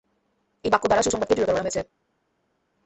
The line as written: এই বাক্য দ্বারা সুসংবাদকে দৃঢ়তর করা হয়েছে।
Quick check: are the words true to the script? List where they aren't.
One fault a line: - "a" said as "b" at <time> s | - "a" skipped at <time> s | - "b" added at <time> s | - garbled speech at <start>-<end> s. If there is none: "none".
none